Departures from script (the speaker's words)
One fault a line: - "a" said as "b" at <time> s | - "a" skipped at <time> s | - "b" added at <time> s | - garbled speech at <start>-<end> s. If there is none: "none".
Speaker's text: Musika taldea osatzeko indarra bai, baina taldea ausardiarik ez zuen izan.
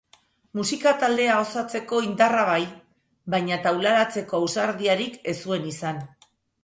- "taldea" said as "taularatzeko" at 3.7 s